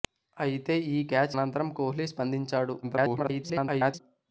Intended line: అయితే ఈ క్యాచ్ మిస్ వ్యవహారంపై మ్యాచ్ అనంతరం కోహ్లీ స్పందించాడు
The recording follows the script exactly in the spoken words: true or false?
false